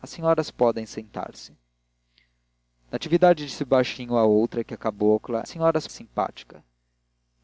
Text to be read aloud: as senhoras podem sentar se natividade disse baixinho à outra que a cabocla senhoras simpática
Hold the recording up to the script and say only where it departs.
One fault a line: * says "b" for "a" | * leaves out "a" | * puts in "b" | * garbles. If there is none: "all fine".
all fine